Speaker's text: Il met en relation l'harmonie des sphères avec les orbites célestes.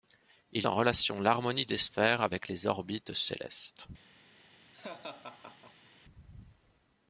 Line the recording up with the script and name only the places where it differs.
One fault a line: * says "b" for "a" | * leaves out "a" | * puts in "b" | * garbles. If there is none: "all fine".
* leaves out "met"